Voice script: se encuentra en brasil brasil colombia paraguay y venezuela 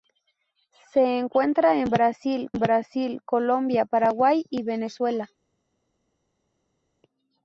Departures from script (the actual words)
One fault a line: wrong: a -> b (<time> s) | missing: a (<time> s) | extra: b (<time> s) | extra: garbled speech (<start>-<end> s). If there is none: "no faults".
no faults